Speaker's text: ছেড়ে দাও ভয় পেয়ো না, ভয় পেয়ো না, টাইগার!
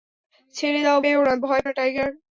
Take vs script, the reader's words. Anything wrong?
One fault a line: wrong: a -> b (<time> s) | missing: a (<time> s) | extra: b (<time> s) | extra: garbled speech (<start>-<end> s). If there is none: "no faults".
missing: ভয় (1.0 s)
missing: পেয়ো (1.6 s)